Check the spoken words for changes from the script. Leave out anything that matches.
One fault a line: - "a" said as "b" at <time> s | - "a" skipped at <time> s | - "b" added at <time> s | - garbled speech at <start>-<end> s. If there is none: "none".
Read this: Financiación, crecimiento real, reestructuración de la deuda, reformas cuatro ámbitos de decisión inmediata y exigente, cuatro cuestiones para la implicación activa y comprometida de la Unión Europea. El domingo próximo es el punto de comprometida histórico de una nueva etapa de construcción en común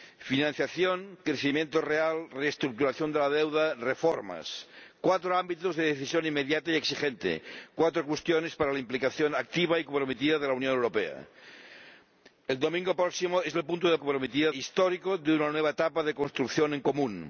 none